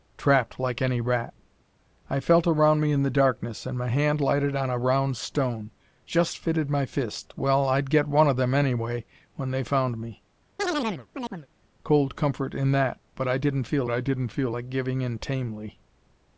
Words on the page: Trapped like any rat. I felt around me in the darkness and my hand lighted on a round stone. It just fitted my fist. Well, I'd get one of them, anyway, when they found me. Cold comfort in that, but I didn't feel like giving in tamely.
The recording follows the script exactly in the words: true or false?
false